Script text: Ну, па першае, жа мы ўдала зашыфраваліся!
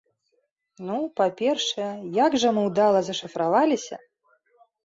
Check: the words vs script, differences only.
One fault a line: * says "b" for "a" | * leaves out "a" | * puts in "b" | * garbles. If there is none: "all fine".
* puts in "як"